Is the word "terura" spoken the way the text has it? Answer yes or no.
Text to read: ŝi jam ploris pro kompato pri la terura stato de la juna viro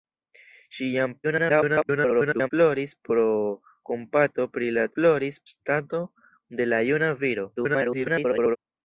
no